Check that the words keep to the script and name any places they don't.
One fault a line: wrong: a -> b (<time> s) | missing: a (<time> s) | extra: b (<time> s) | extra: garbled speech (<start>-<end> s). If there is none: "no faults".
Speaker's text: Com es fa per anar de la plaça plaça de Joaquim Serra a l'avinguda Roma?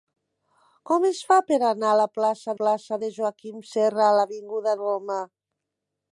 no faults